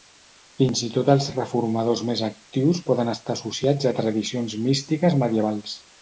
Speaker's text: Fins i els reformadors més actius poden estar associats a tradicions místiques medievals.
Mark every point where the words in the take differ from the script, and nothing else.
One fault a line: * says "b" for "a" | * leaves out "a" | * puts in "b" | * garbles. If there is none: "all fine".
* puts in "tot"